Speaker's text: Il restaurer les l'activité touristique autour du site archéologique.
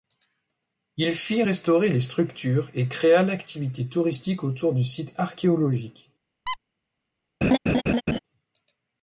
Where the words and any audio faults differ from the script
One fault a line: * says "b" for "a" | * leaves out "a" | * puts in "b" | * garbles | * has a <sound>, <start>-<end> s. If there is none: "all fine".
* puts in "fit"
* puts in "structures et créa"
* has a squeak, 6.5-6.6 s
* has a laugh, 7.4-8.2 s